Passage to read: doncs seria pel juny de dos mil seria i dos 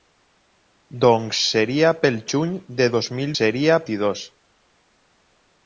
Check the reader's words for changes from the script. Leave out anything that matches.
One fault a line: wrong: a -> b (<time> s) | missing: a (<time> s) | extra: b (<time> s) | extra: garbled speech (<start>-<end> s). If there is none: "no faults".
no faults